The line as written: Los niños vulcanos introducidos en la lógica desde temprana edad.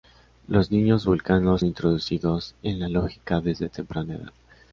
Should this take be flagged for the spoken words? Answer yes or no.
no